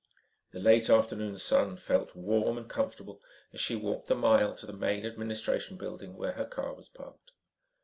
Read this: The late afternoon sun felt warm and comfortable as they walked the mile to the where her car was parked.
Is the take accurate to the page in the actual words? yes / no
no